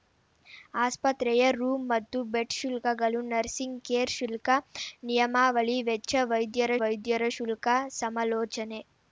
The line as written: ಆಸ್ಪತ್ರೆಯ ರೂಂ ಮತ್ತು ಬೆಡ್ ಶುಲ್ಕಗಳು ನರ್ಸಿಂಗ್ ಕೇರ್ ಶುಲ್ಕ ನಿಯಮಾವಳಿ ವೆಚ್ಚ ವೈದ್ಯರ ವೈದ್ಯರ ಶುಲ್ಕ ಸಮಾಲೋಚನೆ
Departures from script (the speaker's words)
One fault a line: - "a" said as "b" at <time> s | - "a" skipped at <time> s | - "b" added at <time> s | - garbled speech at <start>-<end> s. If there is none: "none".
none